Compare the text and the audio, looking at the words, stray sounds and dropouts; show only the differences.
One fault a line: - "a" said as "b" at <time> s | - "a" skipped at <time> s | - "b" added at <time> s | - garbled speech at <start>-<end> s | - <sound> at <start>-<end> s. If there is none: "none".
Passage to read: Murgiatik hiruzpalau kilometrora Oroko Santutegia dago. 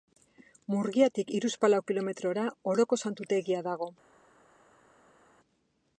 none